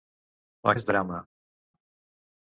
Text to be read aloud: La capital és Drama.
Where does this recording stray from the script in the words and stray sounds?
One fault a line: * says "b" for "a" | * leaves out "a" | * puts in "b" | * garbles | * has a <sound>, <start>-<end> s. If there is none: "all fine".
* leaves out "capital"